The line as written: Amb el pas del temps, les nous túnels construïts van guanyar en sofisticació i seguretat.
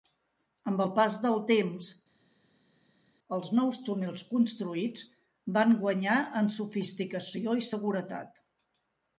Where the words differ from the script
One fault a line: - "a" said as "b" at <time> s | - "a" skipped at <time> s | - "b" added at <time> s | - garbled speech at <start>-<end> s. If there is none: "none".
- "les" said as "els" at 3.4 s